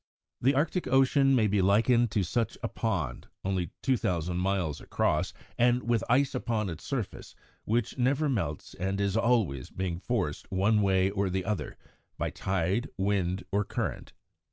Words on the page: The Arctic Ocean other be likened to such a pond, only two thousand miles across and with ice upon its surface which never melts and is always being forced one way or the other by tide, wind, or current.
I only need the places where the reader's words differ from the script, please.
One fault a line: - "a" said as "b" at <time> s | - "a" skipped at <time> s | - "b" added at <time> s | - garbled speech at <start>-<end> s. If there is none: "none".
- "other" said as "may" at 1.3 s